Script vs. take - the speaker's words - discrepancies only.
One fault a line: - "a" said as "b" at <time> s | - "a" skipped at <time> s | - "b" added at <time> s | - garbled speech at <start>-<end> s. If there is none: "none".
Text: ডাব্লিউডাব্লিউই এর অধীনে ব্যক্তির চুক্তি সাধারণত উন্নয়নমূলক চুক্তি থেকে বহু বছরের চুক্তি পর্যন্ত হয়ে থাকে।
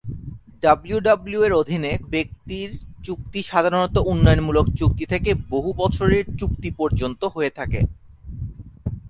none